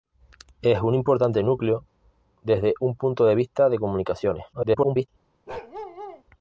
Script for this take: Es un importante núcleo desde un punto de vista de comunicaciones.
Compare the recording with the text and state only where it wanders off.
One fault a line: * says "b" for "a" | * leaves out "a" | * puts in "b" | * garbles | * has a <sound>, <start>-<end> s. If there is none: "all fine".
* garbles
* has a bark, 5.5-6.2 s